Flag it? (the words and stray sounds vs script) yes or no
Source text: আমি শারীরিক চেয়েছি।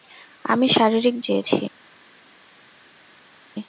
no